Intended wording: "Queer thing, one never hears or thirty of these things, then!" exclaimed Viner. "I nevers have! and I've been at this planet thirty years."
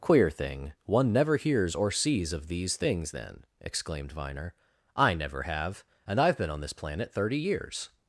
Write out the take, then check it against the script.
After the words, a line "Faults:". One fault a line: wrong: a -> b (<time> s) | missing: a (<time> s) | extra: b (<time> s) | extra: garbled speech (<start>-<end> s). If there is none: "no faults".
"Queer thing, one never hears or sees of these things, then!" exclaimed Viner. "I never have! and I've been on this planet thirty years."
Faults:
wrong: thirty -> sees (1.9 s)
wrong: nevers -> never (5.1 s)
wrong: at -> on (6.5 s)